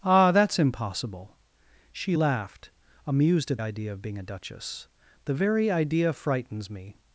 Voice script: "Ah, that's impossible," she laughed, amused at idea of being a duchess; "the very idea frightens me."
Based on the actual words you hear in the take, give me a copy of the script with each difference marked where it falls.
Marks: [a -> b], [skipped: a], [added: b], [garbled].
"Ah, that's impossible," she laughed, amused at idea of being a duchess; "the very idea frightens me."